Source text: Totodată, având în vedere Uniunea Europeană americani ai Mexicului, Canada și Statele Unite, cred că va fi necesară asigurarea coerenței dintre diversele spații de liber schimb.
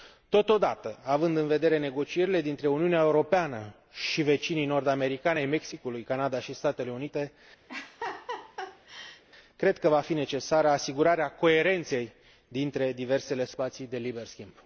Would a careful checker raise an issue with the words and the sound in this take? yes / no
yes